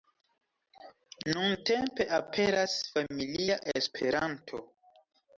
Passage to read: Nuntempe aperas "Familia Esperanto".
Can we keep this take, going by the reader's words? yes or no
yes